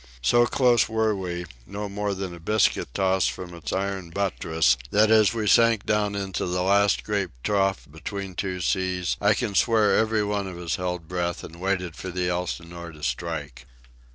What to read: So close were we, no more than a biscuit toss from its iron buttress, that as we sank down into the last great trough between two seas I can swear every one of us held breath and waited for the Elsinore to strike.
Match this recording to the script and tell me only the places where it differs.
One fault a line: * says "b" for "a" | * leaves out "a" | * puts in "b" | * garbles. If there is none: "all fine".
all fine